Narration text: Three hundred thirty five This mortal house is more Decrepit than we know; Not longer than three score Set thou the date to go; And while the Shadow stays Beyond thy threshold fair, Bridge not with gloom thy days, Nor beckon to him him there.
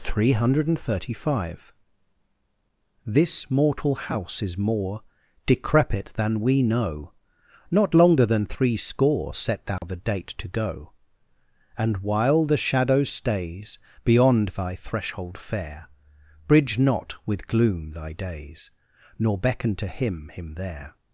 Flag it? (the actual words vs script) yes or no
no